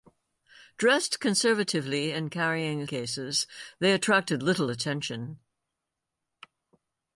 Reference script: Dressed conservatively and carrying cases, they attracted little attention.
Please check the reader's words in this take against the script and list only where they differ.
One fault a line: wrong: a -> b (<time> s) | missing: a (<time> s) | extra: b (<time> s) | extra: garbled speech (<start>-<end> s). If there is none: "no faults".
no faults